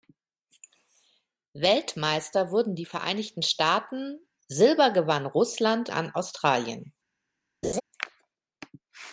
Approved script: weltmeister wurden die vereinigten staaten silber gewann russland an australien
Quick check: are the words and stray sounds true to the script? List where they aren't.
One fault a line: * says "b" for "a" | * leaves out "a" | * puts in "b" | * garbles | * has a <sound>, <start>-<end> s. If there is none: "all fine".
* has a laugh, 7.6-7.8 s